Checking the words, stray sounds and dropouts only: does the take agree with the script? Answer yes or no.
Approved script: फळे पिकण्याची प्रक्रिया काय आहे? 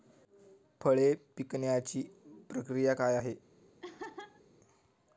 no